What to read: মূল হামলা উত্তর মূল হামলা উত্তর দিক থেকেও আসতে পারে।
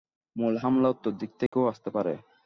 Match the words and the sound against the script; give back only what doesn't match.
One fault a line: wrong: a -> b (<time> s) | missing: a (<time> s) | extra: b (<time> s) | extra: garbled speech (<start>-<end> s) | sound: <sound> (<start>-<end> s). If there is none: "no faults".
missing: মূল হামলা উত্তর (1.1 s)
sound: dropout (1.5-1.5 s)